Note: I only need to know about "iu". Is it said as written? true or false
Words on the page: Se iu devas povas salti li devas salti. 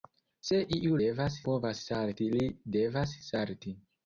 true